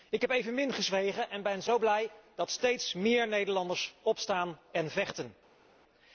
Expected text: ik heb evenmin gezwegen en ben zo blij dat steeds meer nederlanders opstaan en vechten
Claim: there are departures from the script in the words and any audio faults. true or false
false